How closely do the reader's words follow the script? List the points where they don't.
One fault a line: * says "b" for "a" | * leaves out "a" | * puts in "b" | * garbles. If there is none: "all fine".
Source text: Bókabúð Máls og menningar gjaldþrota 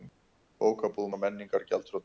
* leaves out "Máls"